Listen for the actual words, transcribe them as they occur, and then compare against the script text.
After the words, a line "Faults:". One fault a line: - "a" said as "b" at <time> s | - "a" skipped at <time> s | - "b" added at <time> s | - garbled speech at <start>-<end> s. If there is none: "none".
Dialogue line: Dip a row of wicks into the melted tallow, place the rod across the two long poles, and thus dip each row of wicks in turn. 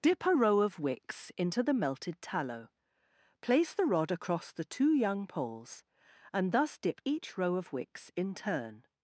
Dip a row of wicks into the melted tallow, place the rod across the two young poles, and thus dip each row of wicks in turn.
Faults:
- "long" said as "young" at 4.9 s